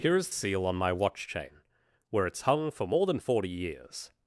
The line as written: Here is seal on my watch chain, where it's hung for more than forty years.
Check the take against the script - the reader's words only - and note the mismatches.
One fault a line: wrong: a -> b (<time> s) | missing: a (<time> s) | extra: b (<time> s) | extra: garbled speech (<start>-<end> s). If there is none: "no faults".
no faults